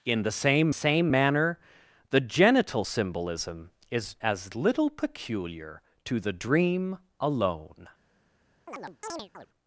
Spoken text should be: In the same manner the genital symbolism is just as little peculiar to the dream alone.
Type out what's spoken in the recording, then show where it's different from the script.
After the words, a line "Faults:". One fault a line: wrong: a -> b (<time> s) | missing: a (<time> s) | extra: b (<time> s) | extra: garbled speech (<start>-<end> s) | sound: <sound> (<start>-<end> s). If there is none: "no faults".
In the same same manner the genital symbolism is as little peculiar to the dream alone.
Faults:
extra: same (0.7 s)
missing: just (4.1 s)
sound: chirp (8.7-9.5 s)